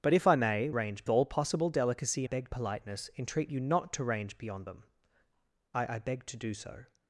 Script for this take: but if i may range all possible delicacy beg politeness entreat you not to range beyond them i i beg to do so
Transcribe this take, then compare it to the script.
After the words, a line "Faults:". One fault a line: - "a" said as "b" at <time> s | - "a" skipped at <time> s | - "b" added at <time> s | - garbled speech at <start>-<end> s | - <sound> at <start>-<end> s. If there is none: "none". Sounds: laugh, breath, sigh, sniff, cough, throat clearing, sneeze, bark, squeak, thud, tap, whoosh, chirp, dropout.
but if i may range all possible delicacy beg politeness entreat you not to range beyond them i i beg to do so
Faults:
none